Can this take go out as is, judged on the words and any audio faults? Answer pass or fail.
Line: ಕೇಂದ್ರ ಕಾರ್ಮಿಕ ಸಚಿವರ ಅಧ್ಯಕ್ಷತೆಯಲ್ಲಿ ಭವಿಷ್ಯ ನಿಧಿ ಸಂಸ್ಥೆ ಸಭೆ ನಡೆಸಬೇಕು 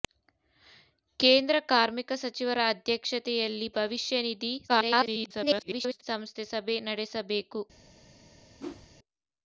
fail